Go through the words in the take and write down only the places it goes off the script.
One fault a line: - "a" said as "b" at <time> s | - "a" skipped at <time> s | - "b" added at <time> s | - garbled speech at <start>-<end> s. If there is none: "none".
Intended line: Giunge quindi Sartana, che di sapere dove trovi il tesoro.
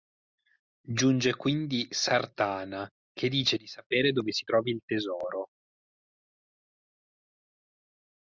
- "dice" added at 3.3 s
- "si" added at 4.3 s